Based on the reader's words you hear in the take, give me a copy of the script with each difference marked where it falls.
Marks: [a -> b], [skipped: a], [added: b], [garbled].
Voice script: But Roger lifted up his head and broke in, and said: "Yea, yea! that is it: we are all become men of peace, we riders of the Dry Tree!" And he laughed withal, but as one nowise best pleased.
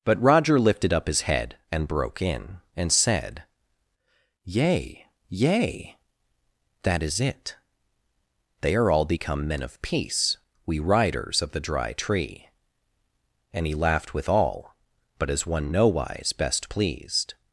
But Roger lifted up his head and broke in, and said: "Yea, yea! that is it: [we -> they] are all become men of peace, we riders of the Dry Tree!" And he laughed withal, but as one nowise best pleased.